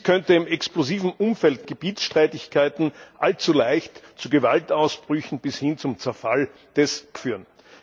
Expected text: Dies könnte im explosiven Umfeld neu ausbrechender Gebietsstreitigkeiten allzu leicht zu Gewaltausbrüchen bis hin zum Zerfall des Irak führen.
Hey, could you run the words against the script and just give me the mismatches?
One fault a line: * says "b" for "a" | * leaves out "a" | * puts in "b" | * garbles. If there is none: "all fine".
* leaves out "neu ausbrechender"
* leaves out "Irak"